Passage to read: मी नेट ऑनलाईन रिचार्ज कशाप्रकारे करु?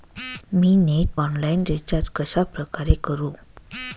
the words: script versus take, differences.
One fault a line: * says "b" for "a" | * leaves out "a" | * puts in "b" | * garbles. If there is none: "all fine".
all fine